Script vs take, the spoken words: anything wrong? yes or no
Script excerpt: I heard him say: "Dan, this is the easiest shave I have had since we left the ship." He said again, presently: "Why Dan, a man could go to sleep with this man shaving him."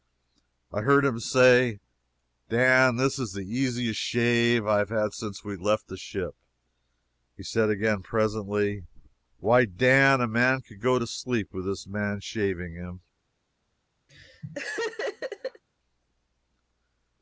no